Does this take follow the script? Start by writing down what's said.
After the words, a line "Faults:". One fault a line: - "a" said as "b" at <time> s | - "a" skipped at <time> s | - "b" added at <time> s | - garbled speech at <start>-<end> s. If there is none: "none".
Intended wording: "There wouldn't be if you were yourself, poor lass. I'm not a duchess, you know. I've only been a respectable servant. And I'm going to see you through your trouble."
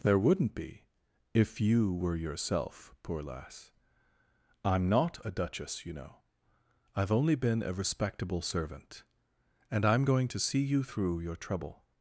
"There wouldn't be if you were yourself, poor lass. I'm not a duchess, you know. I've only been a respectable servant. And I'm going to see you through your trouble."
Faults:
none